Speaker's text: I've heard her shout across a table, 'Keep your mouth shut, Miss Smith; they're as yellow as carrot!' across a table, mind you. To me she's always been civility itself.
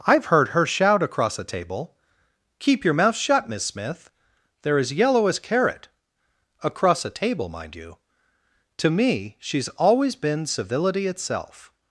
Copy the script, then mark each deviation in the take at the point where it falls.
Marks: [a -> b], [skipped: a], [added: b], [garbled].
I've heard her shout across a table, 'Keep your mouth shut, Miss Smith; they're as yellow as carrot!' across a table, mind you. To me she's always been civility itself.